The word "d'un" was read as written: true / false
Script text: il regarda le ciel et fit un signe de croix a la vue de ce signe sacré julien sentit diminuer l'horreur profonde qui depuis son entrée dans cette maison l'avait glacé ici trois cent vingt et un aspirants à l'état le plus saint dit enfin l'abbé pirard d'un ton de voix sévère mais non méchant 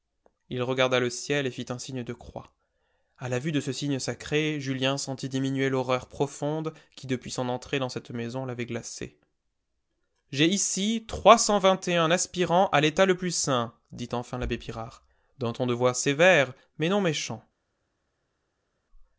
true